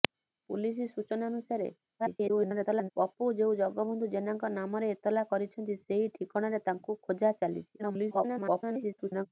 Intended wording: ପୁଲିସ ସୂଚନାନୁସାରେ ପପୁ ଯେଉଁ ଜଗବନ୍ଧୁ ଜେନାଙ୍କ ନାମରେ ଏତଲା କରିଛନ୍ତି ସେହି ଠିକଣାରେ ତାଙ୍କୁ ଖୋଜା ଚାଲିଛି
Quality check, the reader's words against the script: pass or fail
fail